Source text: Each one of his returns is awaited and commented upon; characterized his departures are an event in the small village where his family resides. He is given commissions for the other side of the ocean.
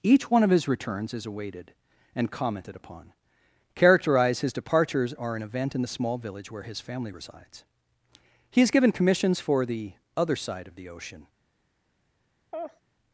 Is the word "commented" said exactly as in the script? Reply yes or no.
yes